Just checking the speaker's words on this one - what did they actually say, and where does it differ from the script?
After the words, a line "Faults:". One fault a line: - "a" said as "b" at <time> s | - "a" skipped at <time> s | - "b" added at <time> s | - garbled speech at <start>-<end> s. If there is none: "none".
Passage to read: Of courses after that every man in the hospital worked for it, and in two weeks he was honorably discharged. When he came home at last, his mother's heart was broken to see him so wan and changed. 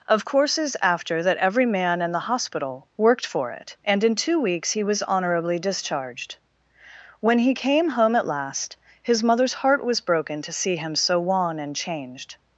Of courses after that every man in the hospital worked for it, and in two weeks he was honorably discharged. When he came home at last, his mother's heart was broken to see him so wan and changed.
Faults:
none